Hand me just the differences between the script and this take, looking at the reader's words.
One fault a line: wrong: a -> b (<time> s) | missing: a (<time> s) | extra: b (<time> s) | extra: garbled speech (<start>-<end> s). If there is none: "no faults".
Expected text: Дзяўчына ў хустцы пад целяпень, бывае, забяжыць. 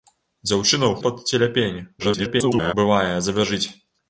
missing: хустцы (0.9 s)
extra: garbled speech (2.0-2.7 s)